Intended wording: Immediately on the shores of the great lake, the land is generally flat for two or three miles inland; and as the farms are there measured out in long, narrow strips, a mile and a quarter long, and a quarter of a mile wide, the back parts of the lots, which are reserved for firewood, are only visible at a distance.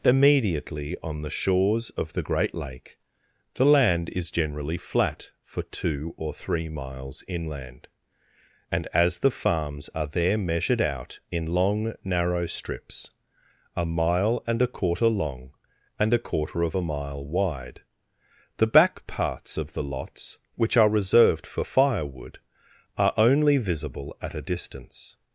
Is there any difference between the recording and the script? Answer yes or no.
no